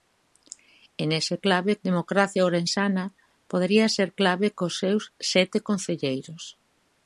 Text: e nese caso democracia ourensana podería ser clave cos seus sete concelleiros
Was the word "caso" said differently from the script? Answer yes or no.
yes